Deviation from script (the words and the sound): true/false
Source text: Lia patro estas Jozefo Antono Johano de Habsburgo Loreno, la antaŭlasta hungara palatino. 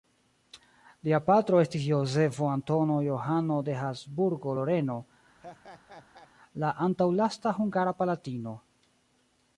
true